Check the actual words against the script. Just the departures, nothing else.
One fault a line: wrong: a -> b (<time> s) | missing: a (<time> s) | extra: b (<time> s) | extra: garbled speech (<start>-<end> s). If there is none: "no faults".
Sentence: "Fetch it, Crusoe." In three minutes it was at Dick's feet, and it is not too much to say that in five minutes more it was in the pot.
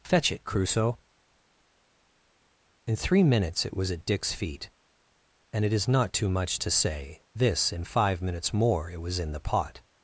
wrong: that -> this (7.3 s)